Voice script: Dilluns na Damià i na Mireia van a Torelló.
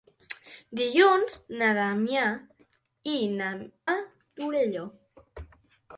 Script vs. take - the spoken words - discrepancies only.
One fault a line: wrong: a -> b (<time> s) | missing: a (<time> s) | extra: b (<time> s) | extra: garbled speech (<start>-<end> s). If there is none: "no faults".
missing: Mireia van (3.5 s)